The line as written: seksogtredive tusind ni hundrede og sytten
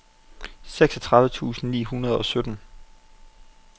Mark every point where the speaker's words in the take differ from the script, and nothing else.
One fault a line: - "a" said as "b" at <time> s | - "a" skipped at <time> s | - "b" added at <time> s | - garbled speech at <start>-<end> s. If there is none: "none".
none